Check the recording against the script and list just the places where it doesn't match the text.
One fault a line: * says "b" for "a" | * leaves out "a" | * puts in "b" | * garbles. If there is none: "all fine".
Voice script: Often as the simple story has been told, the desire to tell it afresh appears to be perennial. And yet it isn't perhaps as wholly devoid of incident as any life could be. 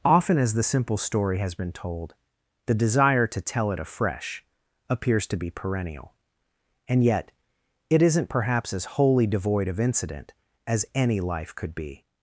all fine